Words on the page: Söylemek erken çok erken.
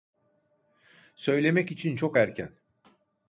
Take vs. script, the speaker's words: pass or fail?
fail